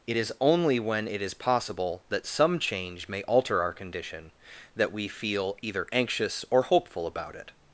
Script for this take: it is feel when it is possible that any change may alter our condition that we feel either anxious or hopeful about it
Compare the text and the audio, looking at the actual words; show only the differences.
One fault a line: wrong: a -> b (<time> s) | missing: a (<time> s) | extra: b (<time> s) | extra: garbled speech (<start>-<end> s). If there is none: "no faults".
wrong: feel -> only (0.4 s)
wrong: any -> some (2.3 s)